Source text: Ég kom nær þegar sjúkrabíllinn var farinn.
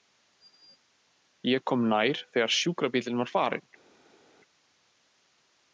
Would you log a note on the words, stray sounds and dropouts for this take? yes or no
no